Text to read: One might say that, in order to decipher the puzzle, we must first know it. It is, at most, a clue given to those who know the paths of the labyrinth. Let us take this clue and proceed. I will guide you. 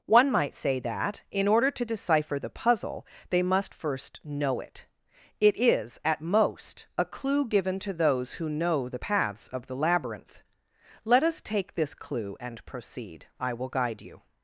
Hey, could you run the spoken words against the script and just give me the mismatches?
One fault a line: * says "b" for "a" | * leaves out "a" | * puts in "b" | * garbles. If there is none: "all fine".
* says "they" for "we"